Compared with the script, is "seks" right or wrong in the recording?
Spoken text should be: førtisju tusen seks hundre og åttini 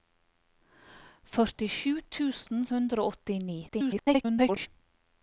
wrong